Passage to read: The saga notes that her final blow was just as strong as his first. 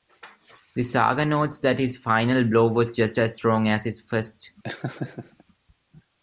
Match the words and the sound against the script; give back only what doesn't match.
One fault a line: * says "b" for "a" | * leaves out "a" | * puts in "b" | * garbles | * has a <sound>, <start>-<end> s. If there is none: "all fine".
* says "his" for "her"
* has a laugh, 4.6-5.4 s